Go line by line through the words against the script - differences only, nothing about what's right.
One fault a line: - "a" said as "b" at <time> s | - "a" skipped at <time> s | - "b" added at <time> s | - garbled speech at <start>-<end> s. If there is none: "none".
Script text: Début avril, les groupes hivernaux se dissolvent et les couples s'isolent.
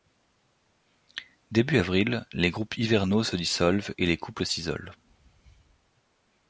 none